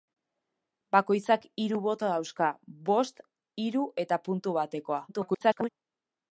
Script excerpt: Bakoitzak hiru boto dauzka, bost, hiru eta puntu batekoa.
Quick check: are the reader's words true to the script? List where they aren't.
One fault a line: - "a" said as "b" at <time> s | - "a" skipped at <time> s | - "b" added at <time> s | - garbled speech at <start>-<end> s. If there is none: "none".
- garbled speech at 5.1-5.7 s